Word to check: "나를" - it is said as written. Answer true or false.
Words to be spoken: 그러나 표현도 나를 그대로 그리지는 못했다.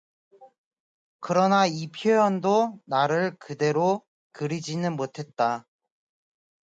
true